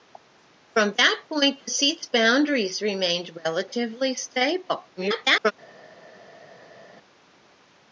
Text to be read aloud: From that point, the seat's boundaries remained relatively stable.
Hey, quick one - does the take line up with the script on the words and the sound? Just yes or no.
no